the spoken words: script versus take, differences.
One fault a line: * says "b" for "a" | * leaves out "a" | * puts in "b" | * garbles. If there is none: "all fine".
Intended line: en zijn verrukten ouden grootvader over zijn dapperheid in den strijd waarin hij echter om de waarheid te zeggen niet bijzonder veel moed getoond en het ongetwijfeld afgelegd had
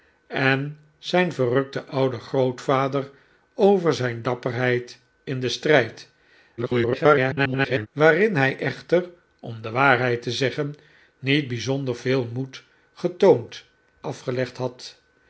* garbles
* leaves out "en het ongetwijfeld"